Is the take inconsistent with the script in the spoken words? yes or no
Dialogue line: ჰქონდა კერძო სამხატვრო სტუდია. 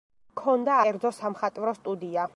no